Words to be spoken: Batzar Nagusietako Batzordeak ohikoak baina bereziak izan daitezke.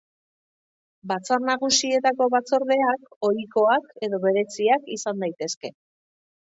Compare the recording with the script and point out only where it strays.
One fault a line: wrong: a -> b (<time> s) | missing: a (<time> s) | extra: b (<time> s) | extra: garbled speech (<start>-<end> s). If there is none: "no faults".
wrong: baina -> edo (4.1 s)